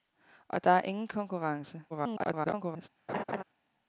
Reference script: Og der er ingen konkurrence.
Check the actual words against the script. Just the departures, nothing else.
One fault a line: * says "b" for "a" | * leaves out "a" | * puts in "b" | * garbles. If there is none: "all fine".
* garbles